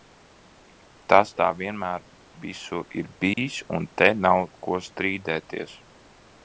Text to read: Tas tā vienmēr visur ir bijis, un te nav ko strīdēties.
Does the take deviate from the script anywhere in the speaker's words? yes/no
no